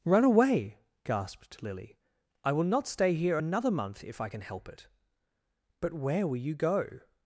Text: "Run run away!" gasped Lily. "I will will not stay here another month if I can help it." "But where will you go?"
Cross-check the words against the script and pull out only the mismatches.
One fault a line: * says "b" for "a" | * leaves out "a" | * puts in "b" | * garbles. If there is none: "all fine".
* leaves out "run"
* leaves out "will"